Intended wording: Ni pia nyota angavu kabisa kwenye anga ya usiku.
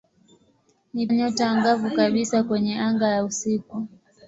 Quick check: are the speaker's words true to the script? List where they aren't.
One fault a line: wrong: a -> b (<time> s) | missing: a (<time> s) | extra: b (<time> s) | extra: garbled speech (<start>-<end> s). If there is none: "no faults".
missing: pia (1.1 s)